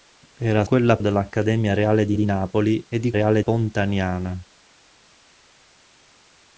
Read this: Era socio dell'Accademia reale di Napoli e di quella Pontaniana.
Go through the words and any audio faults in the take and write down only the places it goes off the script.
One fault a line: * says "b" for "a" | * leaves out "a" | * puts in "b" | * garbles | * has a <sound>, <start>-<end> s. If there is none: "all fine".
* says "quella" for "socio"
* puts in "di"
* says "reale" for "quella"